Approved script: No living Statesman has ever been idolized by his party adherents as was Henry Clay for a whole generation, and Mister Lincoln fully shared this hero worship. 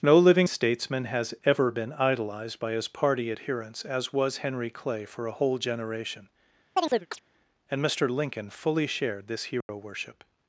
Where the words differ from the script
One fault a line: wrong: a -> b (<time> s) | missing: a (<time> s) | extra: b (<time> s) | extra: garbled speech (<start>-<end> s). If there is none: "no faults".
no faults